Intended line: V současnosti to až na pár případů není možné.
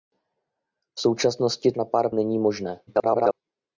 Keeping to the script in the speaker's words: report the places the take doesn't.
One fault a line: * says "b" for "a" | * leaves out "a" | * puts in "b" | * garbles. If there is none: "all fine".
* leaves out "to až"
* leaves out "případů"
* garbles